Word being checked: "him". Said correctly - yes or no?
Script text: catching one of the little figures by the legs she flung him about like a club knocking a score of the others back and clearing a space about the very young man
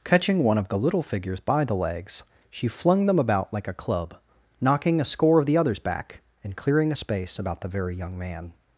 no